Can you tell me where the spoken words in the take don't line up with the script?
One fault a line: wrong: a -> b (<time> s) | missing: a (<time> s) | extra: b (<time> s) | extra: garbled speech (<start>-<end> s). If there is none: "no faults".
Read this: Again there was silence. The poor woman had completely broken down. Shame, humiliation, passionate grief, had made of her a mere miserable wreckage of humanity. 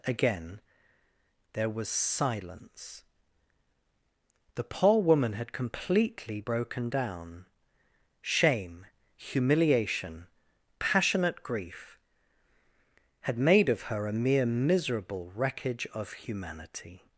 no faults